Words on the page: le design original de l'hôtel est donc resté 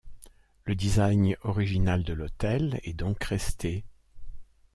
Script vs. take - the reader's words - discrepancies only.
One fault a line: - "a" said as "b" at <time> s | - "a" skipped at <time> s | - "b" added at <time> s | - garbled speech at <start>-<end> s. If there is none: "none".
none